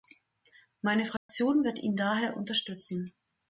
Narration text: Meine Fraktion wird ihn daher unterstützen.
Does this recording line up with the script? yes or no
yes